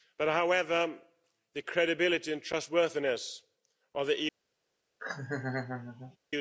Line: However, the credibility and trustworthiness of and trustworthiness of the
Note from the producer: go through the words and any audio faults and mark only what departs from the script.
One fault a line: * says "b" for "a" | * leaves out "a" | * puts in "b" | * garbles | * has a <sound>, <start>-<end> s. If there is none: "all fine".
* leaves out "and trustworthiness of"
* has a laugh, 5.0-6.2 s